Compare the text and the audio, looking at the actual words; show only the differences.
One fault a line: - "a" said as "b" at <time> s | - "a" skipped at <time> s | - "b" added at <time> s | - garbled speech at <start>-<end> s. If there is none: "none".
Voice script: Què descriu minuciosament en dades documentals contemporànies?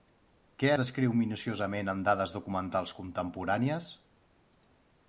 none